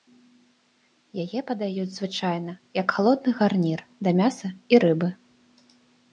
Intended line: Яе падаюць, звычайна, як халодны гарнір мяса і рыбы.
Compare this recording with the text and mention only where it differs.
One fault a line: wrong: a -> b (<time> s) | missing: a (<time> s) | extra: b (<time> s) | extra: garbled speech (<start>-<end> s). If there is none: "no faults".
extra: да (4.1 s)